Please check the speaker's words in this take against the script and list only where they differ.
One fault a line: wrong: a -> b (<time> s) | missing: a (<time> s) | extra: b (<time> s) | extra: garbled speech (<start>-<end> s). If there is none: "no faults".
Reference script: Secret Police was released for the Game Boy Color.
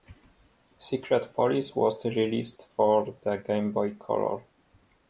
no faults